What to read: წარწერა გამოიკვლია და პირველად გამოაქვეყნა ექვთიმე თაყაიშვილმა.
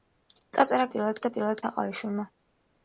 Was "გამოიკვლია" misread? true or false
true